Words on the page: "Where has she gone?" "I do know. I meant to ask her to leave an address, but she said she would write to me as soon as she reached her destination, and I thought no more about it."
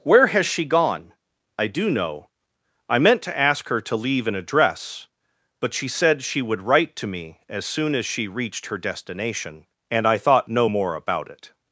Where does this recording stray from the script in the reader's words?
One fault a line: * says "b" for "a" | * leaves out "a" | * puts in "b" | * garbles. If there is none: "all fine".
all fine